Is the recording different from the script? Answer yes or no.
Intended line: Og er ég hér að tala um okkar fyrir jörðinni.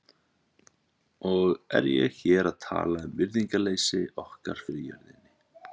yes